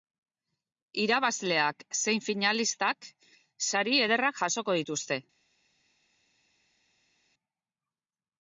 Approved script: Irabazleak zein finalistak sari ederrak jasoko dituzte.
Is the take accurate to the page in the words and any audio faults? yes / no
yes